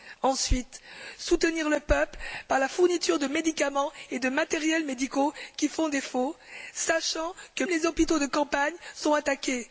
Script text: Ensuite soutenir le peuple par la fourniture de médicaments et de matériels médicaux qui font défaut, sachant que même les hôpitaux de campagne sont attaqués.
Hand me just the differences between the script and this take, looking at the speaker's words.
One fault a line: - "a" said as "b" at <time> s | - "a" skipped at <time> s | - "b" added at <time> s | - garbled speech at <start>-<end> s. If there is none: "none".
- "même" skipped at 7.6 s